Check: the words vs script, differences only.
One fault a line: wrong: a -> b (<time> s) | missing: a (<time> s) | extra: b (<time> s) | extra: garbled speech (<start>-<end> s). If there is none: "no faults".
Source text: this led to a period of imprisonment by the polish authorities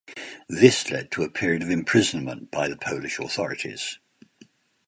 no faults